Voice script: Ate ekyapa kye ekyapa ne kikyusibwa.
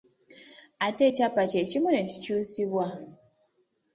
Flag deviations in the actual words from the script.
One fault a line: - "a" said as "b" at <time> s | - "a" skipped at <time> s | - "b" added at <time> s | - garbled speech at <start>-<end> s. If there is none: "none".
- "ekyapa" said as "kimu" at 1.7 s